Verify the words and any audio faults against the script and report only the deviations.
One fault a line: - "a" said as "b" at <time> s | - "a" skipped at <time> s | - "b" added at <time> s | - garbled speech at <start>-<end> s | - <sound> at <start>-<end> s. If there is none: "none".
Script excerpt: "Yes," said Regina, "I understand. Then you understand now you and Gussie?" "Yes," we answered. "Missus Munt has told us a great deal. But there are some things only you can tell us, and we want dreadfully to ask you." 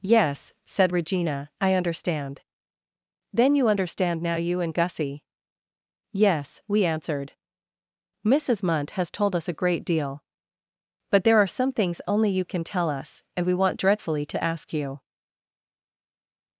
none